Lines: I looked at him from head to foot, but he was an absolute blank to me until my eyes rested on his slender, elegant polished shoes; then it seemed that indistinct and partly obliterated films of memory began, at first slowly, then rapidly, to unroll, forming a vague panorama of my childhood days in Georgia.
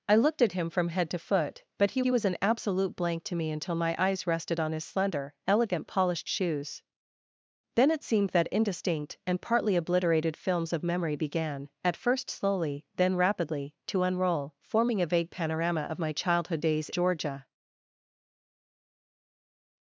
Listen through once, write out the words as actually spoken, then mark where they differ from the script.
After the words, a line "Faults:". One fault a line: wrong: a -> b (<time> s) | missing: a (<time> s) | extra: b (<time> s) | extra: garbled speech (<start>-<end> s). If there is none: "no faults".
I looked at him from head to foot, but he he was an absolute blank to me until my eyes rested on his slender, elegant polished shoes; then it seemed that indistinct and partly obliterated films of memory began, at first slowly, then rapidly, to unroll, forming a vague panorama of my childhood days Georgia.
Faults:
extra: he (2.0 s)
missing: in (16.9 s)